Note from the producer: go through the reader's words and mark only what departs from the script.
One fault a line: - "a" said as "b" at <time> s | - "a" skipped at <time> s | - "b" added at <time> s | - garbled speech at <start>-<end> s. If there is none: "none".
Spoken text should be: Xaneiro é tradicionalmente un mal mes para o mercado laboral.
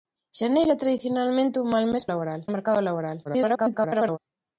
- "para" said as "laboral" at 2.1 s
- garbled speech at 3.2-4.2 s